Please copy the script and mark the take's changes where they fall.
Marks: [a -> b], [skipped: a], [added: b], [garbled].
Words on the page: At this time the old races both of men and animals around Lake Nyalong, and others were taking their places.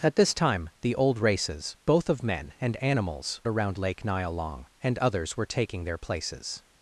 At this time the old races both of men and animals around Lake Nyalong, and others were taking their places.